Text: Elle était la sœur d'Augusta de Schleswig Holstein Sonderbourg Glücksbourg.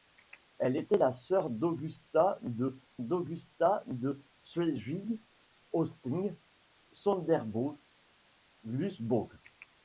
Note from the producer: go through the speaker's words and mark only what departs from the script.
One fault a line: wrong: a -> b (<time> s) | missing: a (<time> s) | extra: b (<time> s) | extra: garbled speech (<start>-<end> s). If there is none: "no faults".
extra: d'Augusta de (3.0 s)